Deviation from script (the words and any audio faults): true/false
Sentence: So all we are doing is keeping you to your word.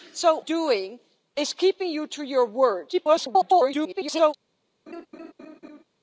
true